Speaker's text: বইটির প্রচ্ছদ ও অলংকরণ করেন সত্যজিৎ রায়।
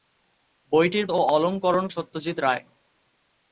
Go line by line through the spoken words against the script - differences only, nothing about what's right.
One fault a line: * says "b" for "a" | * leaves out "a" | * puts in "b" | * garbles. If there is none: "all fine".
* leaves out "প্রচ্ছদ"
* leaves out "করেন"